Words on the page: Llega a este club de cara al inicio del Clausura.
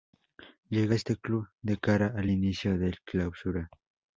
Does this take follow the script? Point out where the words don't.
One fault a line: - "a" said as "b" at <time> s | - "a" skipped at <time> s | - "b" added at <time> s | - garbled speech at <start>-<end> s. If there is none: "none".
none